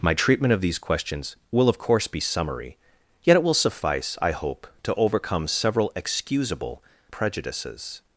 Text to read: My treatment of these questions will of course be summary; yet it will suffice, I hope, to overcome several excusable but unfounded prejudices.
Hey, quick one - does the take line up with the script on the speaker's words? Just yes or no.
no